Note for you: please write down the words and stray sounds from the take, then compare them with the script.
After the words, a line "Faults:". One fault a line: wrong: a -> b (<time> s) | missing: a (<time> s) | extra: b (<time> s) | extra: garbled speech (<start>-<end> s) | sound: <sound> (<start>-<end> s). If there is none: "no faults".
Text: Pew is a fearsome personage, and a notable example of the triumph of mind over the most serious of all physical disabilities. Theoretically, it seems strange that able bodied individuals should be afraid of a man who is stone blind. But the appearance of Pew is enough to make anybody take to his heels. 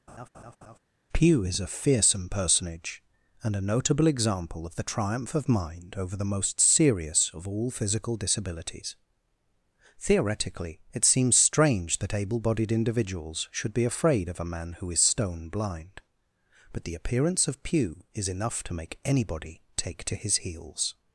Pew is a fearsome personage, and a notable example of the triumph of mind over the most serious of all physical disabilities. Theoretically, it seems strange that able bodied individuals should be afraid of a man who is stone blind. But the appearance of Pew is enough to make anybody take to his heels.
Faults:
sound: laugh (0.1-0.8 s)